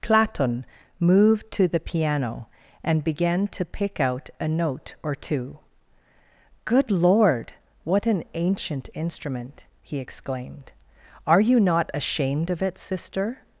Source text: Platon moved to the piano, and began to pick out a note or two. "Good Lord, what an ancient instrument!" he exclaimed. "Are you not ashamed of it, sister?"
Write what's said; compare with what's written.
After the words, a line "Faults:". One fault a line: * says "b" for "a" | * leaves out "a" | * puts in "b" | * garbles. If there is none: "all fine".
Platon moved to the piano, and began to pick out a note or two. "Good Lord, what an ancient instrument!" he exclaimed. "Are you not ashamed of it, sister?"
Faults:
all fine